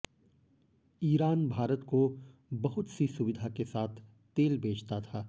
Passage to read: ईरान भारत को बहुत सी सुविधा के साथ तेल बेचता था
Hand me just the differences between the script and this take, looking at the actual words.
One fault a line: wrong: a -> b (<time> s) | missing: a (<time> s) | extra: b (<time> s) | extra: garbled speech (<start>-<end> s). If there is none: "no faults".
no faults